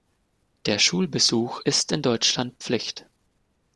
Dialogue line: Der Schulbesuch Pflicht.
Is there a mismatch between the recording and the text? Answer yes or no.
yes